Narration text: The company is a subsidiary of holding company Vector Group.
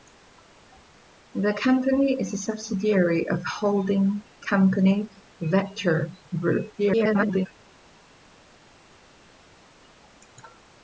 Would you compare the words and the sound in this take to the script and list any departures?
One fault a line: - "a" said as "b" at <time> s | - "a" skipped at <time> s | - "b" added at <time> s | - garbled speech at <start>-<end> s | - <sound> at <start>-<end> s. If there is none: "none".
- garbled speech at 6.8-7.5 s